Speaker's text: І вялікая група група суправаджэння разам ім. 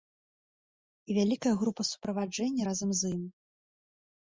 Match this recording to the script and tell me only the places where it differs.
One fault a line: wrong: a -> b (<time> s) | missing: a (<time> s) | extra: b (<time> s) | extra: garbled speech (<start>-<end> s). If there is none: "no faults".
missing: група (1.8 s)
extra: з (3.0 s)